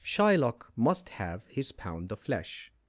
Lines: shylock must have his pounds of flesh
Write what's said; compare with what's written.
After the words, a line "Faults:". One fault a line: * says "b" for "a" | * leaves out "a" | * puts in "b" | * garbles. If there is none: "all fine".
shylock must have his pound of flesh
Faults:
* says "pound" for "pounds"